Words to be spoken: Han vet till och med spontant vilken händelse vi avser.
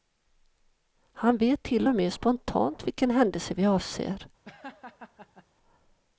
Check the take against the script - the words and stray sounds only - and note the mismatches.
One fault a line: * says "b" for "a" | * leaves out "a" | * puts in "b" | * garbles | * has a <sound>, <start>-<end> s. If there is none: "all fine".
* has a laugh, 4.4-5.4 s